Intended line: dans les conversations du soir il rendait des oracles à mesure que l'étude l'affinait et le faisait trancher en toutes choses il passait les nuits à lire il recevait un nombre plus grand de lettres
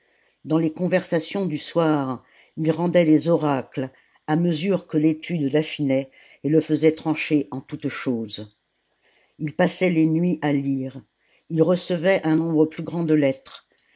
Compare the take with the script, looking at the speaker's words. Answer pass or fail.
pass